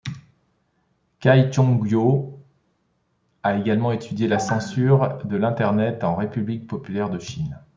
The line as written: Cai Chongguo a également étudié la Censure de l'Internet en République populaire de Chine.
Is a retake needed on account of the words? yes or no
no